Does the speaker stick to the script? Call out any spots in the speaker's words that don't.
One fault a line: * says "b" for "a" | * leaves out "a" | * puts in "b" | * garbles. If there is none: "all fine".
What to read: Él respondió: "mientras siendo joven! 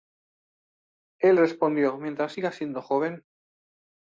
* puts in "siga"